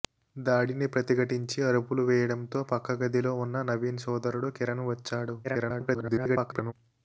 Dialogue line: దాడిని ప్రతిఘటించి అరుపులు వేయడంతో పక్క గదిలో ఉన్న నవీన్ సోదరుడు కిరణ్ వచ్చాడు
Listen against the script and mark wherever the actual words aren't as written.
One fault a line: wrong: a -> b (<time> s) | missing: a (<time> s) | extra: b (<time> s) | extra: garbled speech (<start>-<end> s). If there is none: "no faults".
extra: garbled speech (5.4-6.7 s)